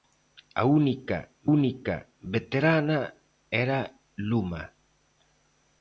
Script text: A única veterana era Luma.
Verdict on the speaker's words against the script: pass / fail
fail